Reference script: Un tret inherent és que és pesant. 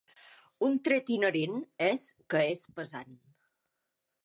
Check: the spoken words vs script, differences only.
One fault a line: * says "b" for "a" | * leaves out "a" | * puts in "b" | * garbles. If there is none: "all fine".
all fine